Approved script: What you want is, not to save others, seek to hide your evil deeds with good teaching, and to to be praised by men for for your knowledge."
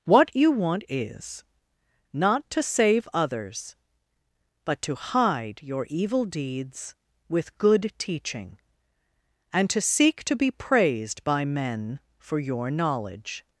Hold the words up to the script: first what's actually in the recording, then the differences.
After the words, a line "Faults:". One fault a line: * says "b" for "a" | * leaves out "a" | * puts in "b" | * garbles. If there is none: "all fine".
What you want is, not to save others, but to hide your evil deeds with good teaching, and to seek to be praised by men for your knowledge."
Faults:
* says "but" for "seek"
* puts in "seek"
* leaves out "for"